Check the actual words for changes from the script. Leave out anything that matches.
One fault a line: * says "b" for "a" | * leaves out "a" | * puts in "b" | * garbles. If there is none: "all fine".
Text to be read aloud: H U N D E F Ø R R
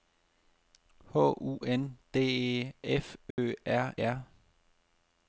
all fine